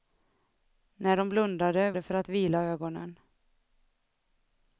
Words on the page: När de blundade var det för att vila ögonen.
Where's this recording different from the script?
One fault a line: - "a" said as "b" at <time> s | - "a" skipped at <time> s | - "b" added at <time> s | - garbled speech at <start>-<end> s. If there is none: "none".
- "var" skipped at 1.9 s